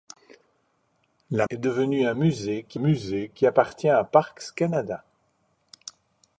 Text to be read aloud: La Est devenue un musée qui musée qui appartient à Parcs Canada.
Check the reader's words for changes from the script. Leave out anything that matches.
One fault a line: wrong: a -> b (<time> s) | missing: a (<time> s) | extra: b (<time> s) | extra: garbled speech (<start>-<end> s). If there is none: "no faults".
no faults